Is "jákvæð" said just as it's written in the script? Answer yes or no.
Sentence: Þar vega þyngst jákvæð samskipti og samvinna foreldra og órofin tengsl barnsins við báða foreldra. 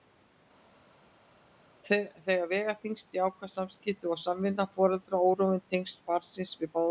yes